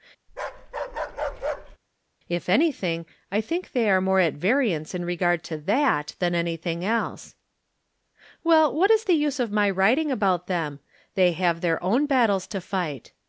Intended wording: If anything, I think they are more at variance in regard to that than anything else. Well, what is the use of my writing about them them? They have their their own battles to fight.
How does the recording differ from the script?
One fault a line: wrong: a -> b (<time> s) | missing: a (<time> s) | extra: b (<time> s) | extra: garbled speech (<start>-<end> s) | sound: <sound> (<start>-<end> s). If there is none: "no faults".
sound: bark (0.3-1.8 s)
missing: them (10.8 s)
missing: their (11.8 s)